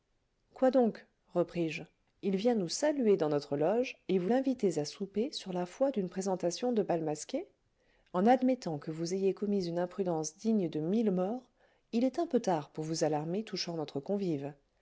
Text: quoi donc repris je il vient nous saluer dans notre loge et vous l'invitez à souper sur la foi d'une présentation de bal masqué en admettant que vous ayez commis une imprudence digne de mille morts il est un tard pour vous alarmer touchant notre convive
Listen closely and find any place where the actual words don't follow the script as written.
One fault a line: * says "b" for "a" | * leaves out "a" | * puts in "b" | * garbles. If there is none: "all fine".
* puts in "peu"